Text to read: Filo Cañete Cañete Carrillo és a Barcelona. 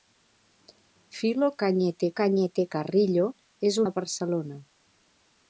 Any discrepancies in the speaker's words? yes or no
no